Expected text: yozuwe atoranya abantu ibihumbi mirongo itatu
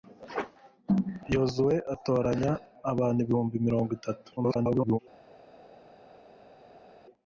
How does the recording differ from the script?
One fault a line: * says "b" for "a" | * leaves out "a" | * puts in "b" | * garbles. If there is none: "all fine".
* garbles